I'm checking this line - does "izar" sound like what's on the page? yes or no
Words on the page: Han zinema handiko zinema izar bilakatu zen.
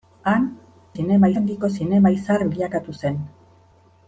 yes